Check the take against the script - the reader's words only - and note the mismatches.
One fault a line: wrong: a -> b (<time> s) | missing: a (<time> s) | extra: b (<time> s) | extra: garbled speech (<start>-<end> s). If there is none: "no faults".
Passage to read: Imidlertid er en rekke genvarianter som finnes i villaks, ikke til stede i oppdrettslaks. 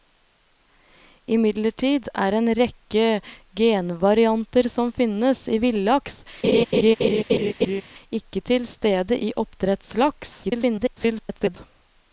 extra: garbled speech (10.4-11.6 s)